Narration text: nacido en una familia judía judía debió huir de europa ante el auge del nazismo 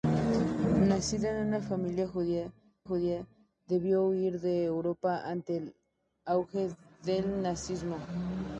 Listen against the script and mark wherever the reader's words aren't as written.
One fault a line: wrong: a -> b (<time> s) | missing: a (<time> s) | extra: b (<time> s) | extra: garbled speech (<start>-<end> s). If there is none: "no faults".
no faults